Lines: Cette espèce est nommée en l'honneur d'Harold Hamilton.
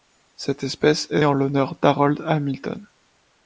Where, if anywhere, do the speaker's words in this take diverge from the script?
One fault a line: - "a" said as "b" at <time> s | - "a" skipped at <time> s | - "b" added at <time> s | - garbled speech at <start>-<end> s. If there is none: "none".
- "nommée" skipped at 1.2 s